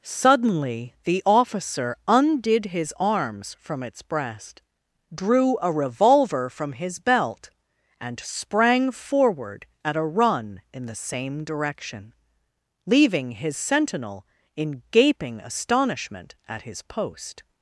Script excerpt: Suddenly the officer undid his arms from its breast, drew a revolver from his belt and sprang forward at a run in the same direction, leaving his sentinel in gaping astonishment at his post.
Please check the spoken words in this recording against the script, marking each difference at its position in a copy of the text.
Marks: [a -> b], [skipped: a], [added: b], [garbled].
Suddenly the officer undid his arms from its breast, drew a revolver from his belt and sprang forward at a run in the same direction, leaving his sentinel in gaping astonishment at his post.